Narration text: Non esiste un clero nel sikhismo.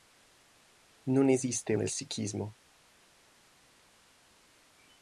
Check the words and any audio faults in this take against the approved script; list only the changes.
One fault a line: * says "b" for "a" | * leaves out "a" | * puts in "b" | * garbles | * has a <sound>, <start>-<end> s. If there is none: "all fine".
* leaves out "un clero"